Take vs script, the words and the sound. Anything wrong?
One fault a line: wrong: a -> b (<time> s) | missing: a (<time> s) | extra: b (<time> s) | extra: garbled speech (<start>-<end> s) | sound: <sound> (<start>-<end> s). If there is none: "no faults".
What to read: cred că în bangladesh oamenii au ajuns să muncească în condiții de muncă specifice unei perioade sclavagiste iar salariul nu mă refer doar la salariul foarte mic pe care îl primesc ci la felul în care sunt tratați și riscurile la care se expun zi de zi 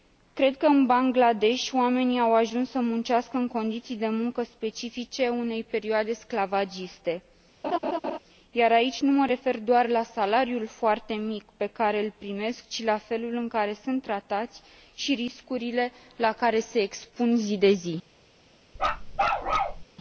sound: laugh (7.6-8.2 s)
wrong: salariul -> aici (8.7 s)
sound: bark (18.8-19.8 s)